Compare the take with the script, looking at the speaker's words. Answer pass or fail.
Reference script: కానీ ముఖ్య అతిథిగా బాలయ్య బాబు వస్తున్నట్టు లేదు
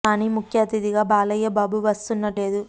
pass